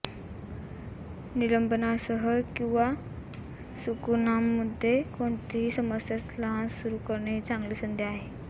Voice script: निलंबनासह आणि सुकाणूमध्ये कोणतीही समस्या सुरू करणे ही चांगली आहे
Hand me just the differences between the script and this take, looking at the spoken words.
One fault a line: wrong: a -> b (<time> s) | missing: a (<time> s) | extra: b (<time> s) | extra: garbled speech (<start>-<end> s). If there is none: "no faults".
wrong: आणि -> किंवा (2.6 s)
extra: लहान (6.4 s)
extra: संधी (7.8 s)